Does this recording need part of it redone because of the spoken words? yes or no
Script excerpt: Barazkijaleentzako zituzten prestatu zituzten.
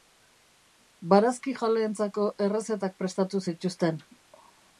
yes